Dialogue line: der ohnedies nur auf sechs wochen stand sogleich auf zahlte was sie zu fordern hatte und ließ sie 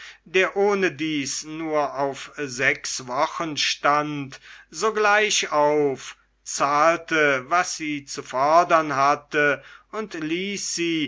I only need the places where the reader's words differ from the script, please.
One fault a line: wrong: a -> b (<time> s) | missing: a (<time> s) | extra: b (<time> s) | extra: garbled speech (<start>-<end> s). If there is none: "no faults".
no faults